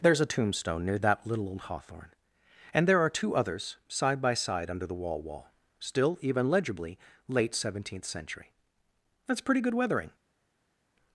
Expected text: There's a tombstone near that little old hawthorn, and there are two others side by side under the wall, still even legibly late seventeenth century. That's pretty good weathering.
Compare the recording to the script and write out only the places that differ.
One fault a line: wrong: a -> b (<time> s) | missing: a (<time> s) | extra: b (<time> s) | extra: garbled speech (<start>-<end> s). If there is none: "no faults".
extra: wall (5.2 s)